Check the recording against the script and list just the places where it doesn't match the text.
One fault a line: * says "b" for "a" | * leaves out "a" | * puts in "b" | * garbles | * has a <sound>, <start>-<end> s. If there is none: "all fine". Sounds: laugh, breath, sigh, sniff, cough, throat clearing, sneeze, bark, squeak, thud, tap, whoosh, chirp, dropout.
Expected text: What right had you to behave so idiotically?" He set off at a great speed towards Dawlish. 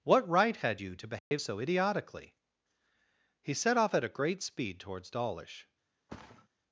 * has a dropout, 1.2-1.3 s
* has a thud, 6.1-6.5 s